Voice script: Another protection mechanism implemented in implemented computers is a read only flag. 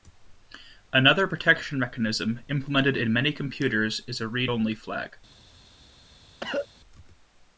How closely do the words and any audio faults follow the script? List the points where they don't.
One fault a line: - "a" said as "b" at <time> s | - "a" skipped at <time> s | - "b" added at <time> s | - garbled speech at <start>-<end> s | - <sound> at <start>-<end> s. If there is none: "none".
- "implemented" said as "many" at 3.1 s
- cough at 6.4-6.7 s